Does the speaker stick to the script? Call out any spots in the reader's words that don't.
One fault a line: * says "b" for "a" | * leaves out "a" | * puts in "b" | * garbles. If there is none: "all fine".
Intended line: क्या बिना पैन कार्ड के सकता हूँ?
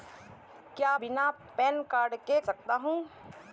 all fine